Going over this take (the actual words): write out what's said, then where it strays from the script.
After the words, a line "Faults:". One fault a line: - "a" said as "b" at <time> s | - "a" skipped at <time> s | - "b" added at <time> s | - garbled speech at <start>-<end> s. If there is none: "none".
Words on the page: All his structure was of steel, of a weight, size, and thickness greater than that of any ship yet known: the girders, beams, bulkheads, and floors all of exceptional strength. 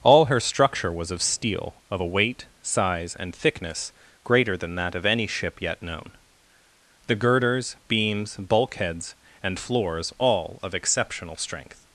All her structure was of steel, of a weight, size, and thickness greater than that of any ship yet known: the girders, beams, bulkheads, and floors all of exceptional strength.
Faults:
- "his" said as "her" at 0.2 s